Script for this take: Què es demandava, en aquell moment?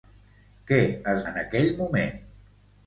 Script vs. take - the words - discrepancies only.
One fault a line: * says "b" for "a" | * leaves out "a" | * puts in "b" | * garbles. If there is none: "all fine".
* leaves out "demandava"